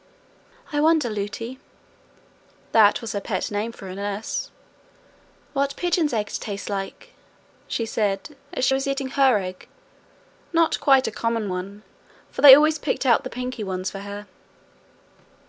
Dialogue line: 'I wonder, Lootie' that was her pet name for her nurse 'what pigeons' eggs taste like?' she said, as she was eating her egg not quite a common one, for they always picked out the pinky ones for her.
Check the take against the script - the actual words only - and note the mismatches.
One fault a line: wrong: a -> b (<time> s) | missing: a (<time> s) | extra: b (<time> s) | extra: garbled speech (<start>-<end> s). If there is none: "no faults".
no faults